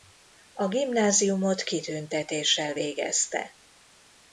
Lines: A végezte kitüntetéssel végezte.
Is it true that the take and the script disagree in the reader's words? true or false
true